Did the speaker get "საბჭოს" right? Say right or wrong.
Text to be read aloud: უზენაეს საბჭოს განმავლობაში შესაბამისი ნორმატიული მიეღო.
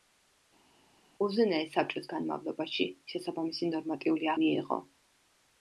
right